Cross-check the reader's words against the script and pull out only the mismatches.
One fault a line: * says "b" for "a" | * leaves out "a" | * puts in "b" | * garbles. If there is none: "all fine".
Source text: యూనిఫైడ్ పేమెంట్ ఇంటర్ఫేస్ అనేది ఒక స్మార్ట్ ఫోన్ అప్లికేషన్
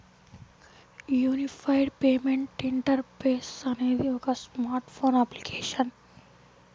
all fine